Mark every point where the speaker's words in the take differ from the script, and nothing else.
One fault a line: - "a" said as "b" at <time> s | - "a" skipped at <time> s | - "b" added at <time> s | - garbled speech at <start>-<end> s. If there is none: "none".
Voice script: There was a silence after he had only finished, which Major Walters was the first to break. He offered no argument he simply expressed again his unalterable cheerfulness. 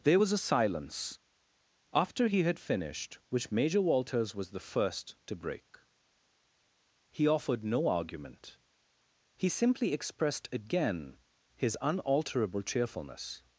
- "only" skipped at 2.6 s